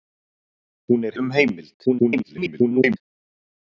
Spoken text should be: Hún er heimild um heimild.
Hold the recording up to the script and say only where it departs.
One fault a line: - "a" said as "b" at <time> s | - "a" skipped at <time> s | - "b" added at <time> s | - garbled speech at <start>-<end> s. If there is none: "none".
- "heimild" skipped at 1.1 s
- garbled speech at 1.9-3.0 s